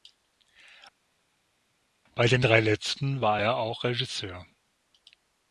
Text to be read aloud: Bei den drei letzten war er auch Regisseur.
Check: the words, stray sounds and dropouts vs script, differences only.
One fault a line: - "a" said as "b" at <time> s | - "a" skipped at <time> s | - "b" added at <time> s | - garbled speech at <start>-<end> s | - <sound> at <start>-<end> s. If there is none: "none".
none